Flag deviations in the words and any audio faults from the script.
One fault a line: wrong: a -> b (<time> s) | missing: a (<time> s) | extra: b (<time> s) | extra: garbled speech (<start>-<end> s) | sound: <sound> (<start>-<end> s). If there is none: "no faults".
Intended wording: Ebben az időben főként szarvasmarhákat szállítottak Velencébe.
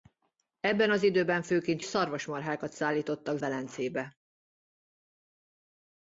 no faults